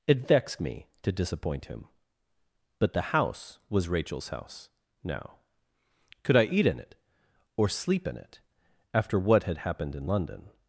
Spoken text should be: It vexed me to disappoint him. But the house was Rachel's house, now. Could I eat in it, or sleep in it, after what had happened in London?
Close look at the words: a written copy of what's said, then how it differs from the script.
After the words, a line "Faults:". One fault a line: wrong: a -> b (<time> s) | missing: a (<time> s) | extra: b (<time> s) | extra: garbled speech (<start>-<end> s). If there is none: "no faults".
It vexed me to disappoint him. But the house was Rachel's house, now. Could I eat in it, or sleep in it, after what had happened in London?
Faults:
no faults